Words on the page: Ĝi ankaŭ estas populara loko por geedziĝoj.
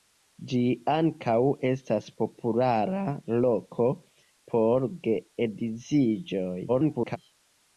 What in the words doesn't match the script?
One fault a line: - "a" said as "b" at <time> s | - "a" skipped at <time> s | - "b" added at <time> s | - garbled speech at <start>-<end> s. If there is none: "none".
- garbled speech at 6.7-7.2 s